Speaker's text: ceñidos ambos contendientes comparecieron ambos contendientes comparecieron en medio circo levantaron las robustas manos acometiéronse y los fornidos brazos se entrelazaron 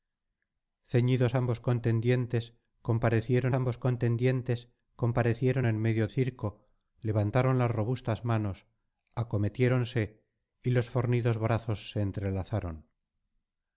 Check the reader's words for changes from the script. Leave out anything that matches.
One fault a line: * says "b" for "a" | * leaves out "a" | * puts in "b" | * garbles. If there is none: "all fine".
all fine